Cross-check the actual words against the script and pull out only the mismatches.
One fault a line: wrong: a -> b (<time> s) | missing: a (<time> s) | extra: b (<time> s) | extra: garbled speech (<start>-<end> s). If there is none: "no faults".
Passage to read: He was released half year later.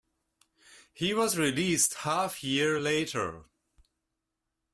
no faults